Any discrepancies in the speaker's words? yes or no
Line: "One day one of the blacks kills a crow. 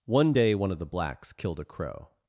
yes